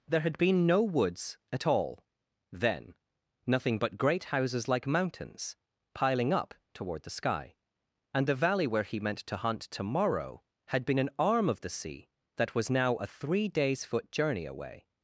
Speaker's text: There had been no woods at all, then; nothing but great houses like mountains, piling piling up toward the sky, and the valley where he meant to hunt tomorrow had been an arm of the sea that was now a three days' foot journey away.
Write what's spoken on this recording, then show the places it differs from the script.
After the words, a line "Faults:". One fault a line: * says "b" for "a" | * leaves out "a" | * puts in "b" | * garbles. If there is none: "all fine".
There had been no woods at all, then; nothing but great houses like mountains, piling up toward the sky, and the valley where he meant to hunt tomorrow had been an arm of the sea that was now a three days' foot journey away.
Faults:
* leaves out "piling"